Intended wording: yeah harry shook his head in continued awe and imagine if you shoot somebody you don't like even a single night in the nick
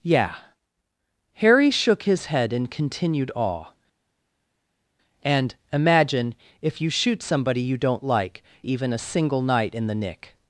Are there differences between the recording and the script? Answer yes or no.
no